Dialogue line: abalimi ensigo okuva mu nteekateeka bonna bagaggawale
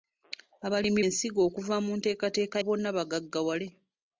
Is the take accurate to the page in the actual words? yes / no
yes